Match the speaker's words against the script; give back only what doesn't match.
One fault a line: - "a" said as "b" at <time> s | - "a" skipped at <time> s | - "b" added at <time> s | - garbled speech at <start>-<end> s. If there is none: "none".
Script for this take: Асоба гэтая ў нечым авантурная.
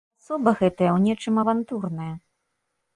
none